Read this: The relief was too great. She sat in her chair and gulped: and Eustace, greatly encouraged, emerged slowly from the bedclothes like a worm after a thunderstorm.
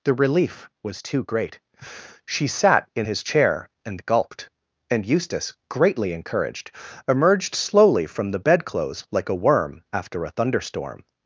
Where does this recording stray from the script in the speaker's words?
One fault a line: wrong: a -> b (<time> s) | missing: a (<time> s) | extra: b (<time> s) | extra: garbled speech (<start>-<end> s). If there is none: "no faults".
wrong: her -> his (3.0 s)